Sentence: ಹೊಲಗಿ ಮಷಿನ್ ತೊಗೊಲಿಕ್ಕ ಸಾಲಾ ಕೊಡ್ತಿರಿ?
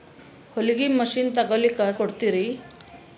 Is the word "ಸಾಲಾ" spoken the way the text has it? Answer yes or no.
no